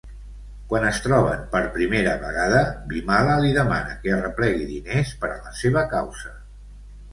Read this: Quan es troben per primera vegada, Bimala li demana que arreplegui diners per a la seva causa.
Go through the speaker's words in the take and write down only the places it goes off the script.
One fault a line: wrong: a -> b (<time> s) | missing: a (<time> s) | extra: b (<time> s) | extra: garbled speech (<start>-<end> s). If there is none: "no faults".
no faults